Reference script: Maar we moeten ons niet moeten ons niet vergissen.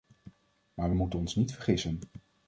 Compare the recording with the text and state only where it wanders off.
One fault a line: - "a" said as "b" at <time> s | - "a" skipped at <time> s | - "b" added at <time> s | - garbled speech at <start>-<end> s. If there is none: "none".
- "moeten ons niet" skipped at 1.5 s